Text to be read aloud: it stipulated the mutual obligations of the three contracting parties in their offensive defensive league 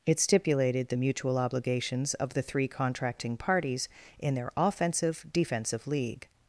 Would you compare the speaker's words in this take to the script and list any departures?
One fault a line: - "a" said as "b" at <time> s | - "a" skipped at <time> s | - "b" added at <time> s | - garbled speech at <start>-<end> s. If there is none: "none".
none